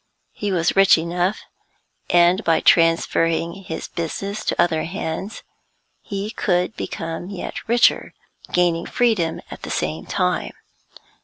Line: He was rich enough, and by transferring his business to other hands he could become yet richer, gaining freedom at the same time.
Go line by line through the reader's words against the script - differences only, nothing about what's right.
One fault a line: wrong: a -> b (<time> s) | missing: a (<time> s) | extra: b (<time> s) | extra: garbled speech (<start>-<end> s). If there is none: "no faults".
no faults